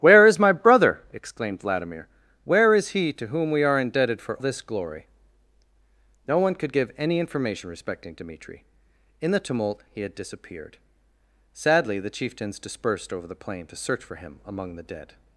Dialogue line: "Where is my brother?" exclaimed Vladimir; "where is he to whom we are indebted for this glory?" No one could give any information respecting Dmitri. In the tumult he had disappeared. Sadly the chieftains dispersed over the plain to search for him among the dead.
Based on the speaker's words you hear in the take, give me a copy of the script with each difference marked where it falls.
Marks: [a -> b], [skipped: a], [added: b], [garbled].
"Where is my brother?" exclaimed Vladimir; "where is he to whom we are indebted for this glory?" No one could give any information respecting Dmitri. In the tumult he had disappeared. Sadly the chieftains dispersed over the plain to search for him among the dead.